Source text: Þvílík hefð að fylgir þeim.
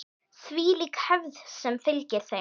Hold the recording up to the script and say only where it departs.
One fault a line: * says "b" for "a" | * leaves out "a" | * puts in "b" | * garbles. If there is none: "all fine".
* says "sem" for "að"